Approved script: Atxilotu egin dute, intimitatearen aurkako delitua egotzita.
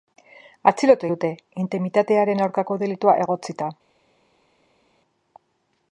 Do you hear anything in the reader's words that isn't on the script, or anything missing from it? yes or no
yes